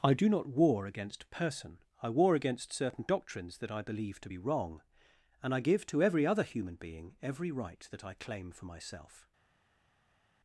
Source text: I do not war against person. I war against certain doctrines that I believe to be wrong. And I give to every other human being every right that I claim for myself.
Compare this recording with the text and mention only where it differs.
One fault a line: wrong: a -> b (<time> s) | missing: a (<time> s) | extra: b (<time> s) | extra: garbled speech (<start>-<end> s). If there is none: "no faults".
no faults